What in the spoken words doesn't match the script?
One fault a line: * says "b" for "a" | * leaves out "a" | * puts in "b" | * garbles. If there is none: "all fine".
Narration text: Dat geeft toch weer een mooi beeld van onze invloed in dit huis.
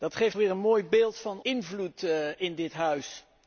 * leaves out "toch"
* leaves out "onze"